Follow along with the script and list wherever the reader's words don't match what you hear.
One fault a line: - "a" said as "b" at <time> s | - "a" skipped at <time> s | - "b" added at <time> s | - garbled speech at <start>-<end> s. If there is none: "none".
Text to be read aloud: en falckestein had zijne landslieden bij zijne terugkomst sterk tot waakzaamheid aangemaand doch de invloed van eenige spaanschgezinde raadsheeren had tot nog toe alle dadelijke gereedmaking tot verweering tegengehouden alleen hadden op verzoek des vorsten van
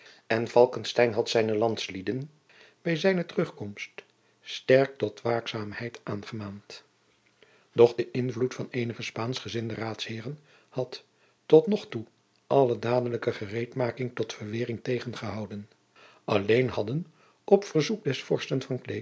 none